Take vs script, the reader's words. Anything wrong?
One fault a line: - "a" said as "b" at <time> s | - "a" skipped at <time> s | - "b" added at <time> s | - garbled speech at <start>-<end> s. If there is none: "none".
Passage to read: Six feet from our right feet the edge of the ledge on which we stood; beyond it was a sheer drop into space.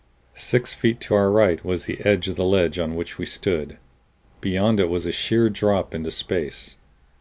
- "from" said as "to" at 1.0 s
- "feet" said as "was" at 1.6 s